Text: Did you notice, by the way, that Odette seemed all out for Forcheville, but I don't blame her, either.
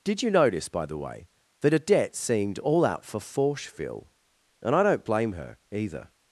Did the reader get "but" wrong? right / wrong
wrong